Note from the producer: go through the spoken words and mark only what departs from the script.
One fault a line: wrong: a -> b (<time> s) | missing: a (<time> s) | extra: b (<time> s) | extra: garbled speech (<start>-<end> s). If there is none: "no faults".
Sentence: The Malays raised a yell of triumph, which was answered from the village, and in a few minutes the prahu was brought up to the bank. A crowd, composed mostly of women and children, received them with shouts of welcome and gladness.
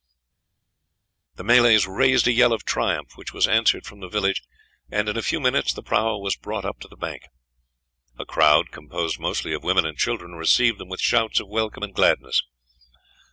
no faults